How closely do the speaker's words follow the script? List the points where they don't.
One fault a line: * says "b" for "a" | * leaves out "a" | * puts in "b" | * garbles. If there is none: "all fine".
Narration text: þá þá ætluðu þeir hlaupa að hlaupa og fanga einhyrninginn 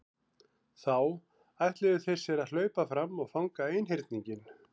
* leaves out "þá"
* says "sér" for "hlaupa"
* puts in "fram"